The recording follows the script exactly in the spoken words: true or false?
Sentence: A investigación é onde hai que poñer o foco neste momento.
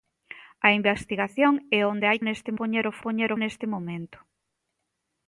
false